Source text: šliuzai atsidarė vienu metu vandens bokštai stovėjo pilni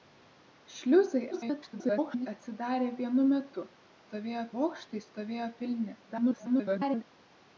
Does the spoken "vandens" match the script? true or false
false